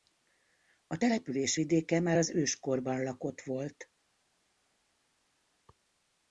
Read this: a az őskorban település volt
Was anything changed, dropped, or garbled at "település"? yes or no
yes